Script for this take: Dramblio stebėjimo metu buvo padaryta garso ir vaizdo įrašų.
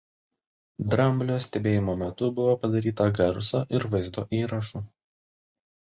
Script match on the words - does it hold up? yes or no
yes